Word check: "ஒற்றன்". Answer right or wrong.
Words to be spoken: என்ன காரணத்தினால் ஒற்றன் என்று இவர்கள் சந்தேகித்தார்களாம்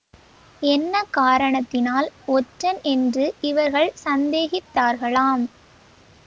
right